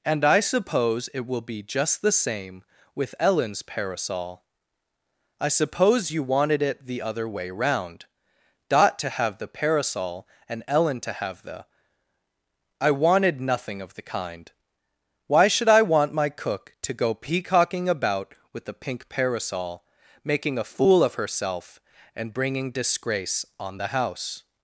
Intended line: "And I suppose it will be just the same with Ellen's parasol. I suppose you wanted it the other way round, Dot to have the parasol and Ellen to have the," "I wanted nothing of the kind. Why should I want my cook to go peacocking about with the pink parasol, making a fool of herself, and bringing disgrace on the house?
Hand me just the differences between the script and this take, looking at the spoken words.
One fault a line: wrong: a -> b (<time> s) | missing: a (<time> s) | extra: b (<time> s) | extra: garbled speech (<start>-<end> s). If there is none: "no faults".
no faults